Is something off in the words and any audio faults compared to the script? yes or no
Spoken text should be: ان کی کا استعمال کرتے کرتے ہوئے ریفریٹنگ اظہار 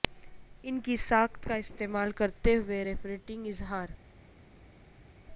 yes